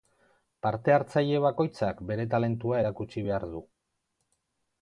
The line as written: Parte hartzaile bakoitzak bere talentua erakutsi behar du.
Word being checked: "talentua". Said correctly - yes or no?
yes